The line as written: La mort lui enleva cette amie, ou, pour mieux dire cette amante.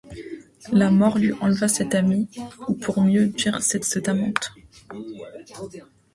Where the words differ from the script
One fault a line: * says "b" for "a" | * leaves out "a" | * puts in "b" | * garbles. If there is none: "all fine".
* puts in "cette"